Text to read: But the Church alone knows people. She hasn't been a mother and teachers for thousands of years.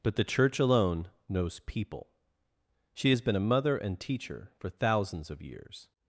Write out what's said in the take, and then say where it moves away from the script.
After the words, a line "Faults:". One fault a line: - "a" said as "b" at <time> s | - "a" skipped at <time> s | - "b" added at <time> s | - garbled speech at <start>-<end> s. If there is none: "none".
But the Church alone knows people. She has been a mother and teacher for thousands of years.
Faults:
- "hasn't" said as "has" at 3.1 s
- "teachers" said as "teacher" at 4.0 s